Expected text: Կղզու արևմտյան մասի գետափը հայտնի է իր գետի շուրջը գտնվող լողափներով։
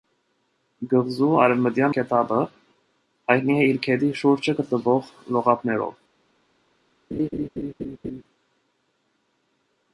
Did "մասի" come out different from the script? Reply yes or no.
yes